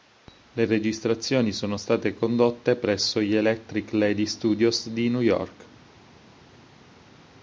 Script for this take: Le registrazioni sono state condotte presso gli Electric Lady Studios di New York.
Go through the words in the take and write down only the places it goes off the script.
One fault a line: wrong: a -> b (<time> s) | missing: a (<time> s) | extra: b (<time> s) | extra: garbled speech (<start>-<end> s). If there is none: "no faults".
no faults